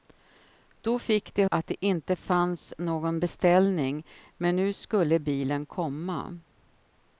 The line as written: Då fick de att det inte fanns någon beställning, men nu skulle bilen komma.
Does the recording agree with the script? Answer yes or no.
yes